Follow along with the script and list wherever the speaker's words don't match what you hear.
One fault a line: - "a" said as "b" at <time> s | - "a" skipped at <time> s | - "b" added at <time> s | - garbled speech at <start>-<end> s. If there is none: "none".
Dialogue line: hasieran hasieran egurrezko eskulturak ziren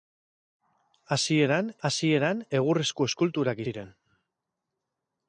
none